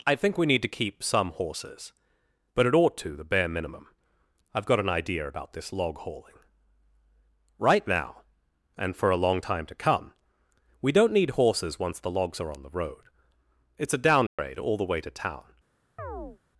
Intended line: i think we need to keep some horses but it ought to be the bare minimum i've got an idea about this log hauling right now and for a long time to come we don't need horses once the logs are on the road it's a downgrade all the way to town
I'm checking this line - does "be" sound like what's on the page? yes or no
no